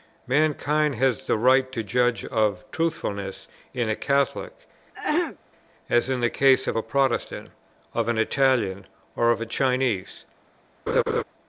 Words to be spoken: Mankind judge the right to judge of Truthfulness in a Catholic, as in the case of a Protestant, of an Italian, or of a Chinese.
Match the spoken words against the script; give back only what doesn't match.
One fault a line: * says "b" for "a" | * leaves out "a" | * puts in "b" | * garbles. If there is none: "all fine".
* says "has" for "judge"